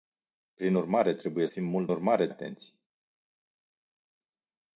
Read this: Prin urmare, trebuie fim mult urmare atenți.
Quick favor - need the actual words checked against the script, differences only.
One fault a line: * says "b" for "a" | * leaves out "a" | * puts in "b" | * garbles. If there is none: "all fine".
all fine